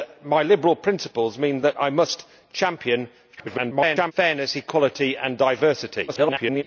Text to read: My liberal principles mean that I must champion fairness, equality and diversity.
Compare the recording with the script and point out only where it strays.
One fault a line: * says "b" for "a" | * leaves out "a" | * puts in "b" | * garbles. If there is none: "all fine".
* garbles
* garbles